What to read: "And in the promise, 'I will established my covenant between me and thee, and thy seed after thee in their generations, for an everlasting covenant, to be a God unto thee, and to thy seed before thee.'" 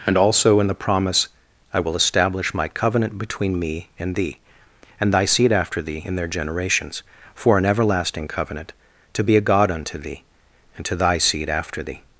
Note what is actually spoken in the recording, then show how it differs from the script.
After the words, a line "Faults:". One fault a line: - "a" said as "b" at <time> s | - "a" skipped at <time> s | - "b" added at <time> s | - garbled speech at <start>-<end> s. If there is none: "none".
"And also in the promise, 'I will establish my covenant between me and thee, and thy seed after thee in their generations, for an everlasting covenant, to be a God unto thee, and to thy seed after thee.'"
Faults:
- "also" added at 0.2 s
- "established" said as "establish" at 1.9 s
- "before" said as "after" at 11.5 s